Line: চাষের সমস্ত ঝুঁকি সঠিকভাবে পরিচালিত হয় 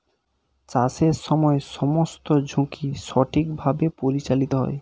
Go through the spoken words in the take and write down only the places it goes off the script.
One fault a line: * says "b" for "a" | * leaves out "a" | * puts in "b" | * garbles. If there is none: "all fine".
* puts in "সময়"